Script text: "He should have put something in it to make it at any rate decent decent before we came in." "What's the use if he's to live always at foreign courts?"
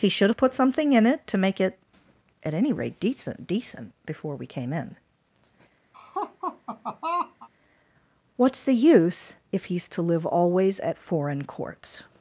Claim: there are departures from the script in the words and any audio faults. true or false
true